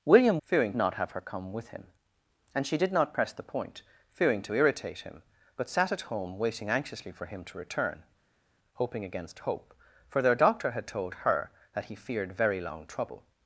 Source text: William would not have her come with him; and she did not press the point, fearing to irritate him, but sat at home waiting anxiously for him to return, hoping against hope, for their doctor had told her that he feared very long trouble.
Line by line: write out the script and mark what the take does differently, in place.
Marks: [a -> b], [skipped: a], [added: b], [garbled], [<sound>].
William [would -> fearing] not have her come with him; and she did not press the point, fearing to irritate him, but sat at home waiting anxiously for him to return, hoping against hope, for their doctor had told her that he feared very long trouble.